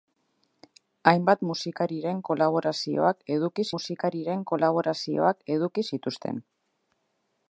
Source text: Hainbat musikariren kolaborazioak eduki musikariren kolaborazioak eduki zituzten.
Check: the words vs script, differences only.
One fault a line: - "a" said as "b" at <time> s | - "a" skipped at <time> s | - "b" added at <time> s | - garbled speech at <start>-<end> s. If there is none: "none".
none